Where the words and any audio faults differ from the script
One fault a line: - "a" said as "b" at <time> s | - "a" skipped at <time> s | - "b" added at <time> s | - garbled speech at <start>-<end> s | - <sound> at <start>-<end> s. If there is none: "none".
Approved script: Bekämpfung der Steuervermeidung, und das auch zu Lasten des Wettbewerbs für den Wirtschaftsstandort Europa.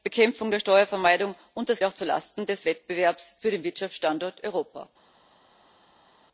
none